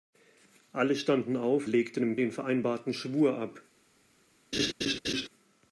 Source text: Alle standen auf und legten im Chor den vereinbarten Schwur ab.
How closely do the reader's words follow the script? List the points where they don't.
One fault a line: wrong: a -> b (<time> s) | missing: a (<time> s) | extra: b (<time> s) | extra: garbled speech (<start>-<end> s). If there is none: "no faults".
missing: und (1.7 s)
missing: Chor (2.2 s)